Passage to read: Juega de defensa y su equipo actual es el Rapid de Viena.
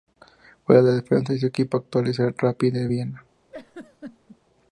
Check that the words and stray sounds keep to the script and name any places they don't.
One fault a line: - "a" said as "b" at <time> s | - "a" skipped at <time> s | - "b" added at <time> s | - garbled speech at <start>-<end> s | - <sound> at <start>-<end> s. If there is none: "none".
- laugh at 3.5-4.4 s